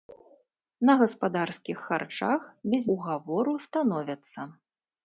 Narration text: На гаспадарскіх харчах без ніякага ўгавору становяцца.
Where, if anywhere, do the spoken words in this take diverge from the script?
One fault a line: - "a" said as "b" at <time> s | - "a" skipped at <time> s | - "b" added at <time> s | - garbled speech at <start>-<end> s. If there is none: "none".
- "ніякага" skipped at 2.8 s